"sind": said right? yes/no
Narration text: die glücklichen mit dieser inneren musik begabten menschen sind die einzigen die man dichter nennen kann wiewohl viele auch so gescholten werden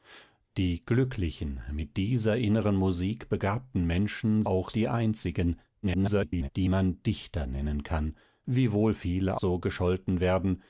no